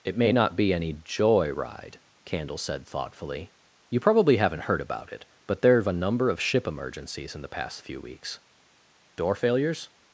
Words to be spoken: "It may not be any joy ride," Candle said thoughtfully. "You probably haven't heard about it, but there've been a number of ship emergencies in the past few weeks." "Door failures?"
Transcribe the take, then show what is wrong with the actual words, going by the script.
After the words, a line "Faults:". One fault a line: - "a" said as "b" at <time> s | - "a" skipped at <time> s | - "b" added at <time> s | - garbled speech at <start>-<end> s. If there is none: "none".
"It may not be any joy ride," Candle said thoughtfully. "You probably haven't heard about it, but there've a number of ship emergencies in the past few weeks." "Door failures?"
Faults:
- "been" skipped at 5.9 s